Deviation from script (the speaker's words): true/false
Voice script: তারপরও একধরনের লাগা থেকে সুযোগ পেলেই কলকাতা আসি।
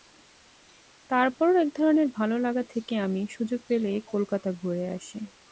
true